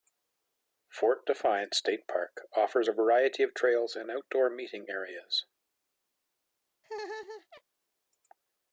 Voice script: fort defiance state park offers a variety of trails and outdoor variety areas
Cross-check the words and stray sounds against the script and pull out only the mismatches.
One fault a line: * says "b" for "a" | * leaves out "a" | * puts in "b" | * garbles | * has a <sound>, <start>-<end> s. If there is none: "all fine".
* says "meeting" for "variety"
* has a laugh, 6.8-7.6 s